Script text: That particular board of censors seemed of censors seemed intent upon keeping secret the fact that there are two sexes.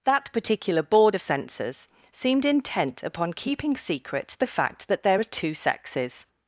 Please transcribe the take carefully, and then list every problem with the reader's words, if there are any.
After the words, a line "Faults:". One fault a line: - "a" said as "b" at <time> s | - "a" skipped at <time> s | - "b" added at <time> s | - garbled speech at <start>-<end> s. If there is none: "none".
That particular board of censors seemed intent upon keeping secret the fact that there are two sexes.
Faults:
- "of censors seemed" skipped at 2.4 s